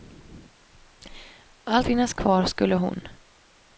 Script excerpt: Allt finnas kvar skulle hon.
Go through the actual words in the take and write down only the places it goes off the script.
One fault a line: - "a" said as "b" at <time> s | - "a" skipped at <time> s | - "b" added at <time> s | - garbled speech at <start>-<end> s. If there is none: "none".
none